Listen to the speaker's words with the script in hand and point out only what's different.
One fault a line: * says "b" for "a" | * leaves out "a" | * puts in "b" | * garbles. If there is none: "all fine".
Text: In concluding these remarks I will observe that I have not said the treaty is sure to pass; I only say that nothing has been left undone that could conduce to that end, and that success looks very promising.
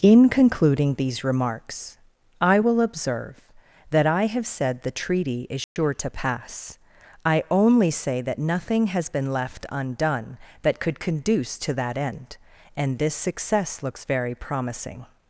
* leaves out "not"
* says "this" for "that"